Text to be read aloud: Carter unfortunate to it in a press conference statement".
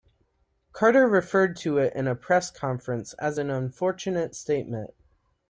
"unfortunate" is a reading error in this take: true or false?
true